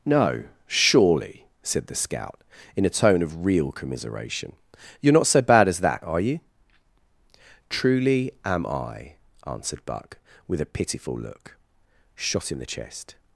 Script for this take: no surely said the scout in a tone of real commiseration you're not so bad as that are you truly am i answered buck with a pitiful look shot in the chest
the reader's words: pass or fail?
pass